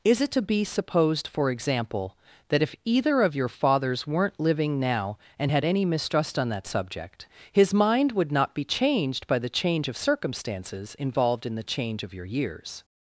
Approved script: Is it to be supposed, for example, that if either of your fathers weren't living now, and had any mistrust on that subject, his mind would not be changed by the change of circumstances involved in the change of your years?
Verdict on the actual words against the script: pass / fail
pass